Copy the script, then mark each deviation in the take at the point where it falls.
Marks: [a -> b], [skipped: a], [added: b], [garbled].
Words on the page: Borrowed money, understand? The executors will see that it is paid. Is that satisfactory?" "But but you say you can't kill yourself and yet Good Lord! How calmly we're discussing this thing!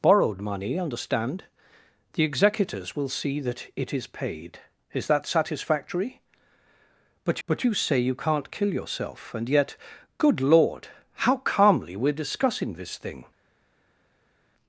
Borrowed money, understand? The executors will see that it is paid. Is that satisfactory?" "But but you say you can't kill yourself and yet Good Lord! How calmly we're discussing this thing!